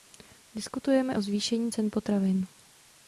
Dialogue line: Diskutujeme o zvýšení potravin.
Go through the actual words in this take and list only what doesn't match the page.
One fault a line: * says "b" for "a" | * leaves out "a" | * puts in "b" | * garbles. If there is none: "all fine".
* puts in "cen"